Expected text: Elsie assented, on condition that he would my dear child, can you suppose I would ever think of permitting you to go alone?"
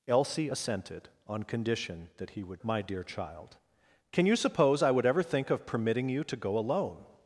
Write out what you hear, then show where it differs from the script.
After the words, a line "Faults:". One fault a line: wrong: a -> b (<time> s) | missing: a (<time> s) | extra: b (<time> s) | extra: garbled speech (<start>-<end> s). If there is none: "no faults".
Elsie assented, on condition that he would my dear child, can you suppose I would ever think of permitting you to go alone?"
Faults:
no faults